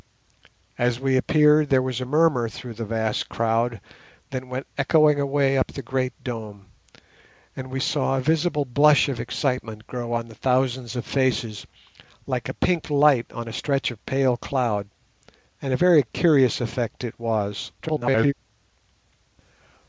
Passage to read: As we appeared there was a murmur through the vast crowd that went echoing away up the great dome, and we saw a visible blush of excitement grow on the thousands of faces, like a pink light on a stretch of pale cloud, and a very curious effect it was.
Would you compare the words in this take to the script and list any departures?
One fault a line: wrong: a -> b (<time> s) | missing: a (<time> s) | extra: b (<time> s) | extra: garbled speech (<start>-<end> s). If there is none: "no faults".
extra: garbled speech (17.8-18.3 s)